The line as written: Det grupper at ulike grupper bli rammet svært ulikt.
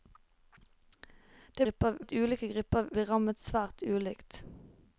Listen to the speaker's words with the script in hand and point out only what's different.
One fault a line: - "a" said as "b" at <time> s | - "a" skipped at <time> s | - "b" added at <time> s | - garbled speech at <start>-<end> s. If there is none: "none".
none